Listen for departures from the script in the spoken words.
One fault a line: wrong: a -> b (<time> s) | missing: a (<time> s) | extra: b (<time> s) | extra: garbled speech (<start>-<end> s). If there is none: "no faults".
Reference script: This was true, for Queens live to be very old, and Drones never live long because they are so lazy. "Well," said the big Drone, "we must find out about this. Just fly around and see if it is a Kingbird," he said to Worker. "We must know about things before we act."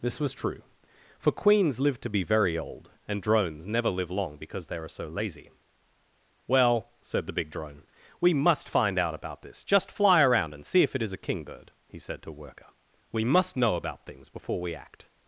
no faults